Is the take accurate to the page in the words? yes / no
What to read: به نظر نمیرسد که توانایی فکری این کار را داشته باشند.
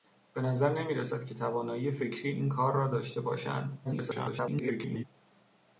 no